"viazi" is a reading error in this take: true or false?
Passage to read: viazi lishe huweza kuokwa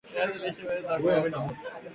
false